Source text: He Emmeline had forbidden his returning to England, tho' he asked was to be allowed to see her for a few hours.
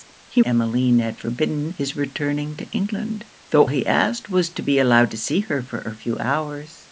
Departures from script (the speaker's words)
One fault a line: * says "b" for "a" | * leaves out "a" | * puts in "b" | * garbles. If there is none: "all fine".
all fine